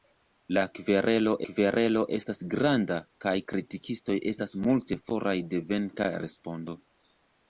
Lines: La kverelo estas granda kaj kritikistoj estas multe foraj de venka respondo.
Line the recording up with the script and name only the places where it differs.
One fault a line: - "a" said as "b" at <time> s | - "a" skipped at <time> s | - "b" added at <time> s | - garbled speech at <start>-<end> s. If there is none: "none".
- "kverelo" added at 1.5 s